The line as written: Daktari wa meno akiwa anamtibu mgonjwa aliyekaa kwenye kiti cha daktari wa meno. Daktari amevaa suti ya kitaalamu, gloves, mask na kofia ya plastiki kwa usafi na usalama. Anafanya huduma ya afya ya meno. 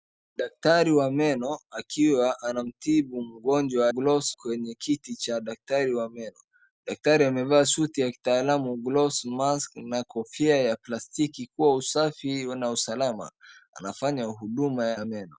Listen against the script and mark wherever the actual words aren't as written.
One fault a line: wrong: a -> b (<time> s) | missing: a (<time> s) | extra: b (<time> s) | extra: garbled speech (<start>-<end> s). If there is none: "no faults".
wrong: aliyekaa -> gloves (3.9 s)
missing: afya (15.0 s)